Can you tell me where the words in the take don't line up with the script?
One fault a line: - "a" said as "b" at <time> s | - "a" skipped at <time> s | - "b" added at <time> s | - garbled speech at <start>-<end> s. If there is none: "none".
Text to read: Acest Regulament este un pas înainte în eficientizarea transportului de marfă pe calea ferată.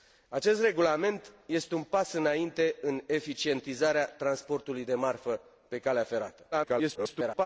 - garbled speech at 6.5-7.5 s